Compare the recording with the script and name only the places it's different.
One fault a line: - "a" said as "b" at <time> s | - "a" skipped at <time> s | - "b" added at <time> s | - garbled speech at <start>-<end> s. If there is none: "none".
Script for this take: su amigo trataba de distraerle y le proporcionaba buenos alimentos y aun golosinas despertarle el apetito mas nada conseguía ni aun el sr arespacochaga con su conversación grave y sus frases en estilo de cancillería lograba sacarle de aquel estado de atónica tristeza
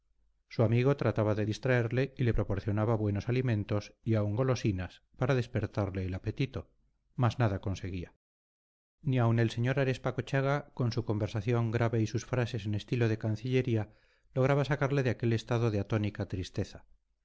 - "para" added at 5.2 s